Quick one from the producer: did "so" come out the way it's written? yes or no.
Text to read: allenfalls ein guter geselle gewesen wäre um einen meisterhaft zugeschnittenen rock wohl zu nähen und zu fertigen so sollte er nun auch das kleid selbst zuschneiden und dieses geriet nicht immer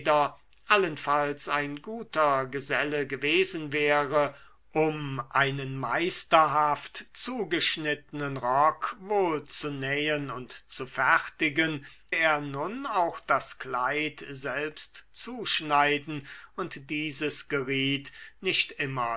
no